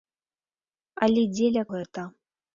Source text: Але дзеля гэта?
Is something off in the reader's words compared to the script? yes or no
no